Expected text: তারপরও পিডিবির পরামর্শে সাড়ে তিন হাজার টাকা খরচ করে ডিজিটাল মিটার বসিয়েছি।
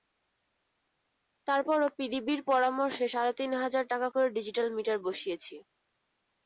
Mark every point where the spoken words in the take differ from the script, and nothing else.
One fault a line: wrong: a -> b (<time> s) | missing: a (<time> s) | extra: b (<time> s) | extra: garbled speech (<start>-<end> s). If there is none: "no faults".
missing: খরচ (4.1 s)